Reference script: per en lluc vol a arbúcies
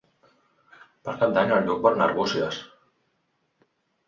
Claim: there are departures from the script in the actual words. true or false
true